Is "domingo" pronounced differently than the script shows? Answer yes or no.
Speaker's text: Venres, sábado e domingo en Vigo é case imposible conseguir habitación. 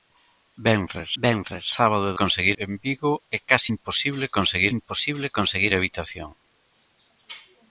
yes